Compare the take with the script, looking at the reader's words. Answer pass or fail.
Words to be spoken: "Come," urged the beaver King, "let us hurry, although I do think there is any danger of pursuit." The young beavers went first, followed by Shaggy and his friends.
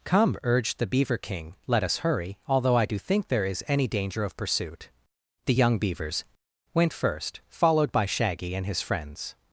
pass